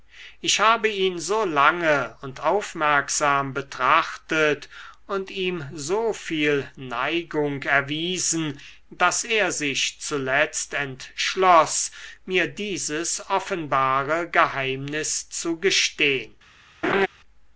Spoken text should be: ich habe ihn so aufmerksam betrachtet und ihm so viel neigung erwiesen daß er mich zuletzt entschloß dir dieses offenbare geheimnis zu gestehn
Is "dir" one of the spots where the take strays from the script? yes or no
yes